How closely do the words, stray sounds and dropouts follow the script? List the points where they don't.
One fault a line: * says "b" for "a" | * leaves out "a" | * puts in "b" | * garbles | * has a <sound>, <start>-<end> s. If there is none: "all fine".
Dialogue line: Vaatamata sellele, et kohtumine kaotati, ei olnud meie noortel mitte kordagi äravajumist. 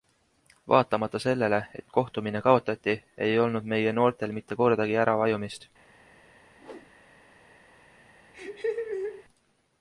* has a whoosh, 6.6-6.9 s
* has a laugh, 8.3-9.2 s